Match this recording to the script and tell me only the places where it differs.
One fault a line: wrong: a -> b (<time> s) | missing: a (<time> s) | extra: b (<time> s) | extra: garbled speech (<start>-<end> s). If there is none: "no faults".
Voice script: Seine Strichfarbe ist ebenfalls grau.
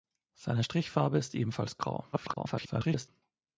extra: garbled speech (2.1-3.1 s)